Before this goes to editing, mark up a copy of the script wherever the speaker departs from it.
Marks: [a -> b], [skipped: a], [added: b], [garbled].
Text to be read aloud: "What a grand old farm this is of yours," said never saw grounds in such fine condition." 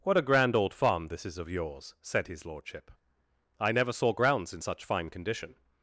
"What a grand old farm this is of yours," said [added: his lordship I] never saw grounds in such fine condition."